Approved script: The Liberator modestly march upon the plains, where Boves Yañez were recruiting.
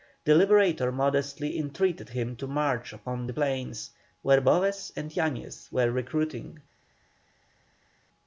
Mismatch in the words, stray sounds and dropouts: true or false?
true